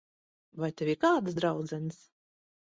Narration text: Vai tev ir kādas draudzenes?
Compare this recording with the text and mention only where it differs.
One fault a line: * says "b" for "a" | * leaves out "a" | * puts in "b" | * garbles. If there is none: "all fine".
all fine